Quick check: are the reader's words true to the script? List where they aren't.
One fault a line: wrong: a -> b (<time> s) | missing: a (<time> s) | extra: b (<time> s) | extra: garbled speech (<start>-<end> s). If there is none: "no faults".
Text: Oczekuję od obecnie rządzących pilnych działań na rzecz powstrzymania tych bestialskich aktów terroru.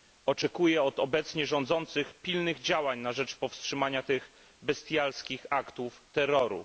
no faults